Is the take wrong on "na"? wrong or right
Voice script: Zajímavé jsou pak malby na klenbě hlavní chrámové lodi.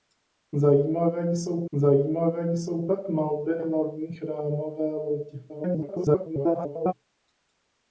wrong